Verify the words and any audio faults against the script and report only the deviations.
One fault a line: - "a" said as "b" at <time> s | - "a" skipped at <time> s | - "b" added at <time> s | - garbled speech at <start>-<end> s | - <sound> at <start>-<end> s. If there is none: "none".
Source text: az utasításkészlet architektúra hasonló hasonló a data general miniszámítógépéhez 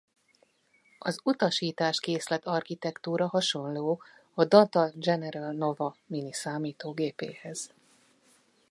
- "hasonló" skipped at 4.0 s
- "nova" added at 5.5 s